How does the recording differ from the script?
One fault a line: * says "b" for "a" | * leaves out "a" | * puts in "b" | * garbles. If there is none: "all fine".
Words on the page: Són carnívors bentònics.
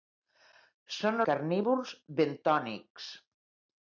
all fine